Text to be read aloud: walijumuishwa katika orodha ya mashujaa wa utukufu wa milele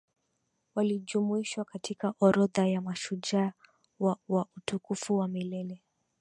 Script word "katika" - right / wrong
right